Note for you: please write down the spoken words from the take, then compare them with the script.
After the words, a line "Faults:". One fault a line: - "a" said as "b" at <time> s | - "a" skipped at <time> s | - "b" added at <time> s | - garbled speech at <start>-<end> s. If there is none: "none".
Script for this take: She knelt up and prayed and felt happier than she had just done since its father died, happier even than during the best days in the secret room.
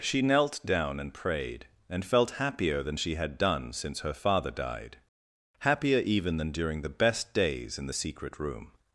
She knelt down and prayed and felt happier than she had done since her father died, happier even than during the best days in the secret room.
Faults:
- "up" said as "down" at 0.7 s
- "just" skipped at 3.4 s
- "its" said as "her" at 4.0 s